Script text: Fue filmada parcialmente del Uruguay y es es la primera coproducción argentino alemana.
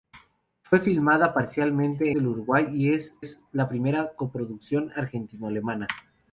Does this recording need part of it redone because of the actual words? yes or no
no